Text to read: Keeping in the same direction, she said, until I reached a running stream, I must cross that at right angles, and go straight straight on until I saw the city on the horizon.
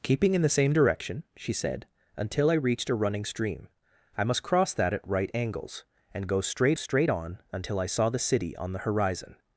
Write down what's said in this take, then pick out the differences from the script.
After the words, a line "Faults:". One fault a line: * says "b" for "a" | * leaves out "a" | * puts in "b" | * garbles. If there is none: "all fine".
Keeping in the same direction, she said, until I reached a running stream, I must cross that at right angles, and go straight straight on until I saw the city on the horizon.
Faults:
all fine